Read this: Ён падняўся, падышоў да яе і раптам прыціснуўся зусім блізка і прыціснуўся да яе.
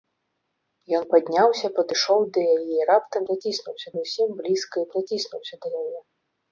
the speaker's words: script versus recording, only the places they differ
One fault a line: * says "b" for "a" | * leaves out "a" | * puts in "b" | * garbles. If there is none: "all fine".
all fine